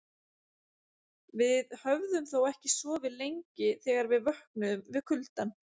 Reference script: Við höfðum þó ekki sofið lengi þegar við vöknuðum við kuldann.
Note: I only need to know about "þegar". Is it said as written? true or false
true